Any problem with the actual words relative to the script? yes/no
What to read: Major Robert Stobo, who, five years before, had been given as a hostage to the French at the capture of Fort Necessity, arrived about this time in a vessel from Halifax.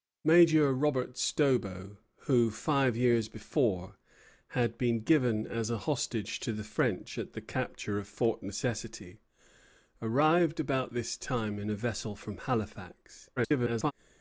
yes